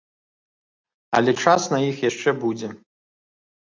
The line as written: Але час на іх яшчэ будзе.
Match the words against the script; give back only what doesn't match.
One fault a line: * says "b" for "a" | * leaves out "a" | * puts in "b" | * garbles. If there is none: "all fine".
all fine